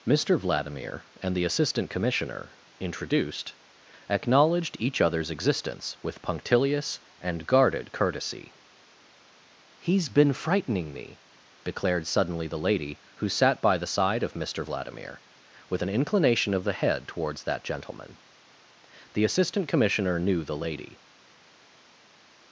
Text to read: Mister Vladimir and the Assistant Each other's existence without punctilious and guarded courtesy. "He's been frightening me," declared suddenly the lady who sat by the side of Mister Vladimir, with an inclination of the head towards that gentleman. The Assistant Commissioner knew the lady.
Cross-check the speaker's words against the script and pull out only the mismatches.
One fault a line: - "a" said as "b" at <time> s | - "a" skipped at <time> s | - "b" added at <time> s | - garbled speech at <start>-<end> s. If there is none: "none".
- "Commissioner introduced acknowledged" added at 1.9 s
- "without" said as "with" at 6.0 s